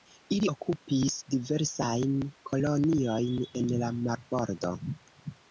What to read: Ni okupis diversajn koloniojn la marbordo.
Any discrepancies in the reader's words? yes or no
yes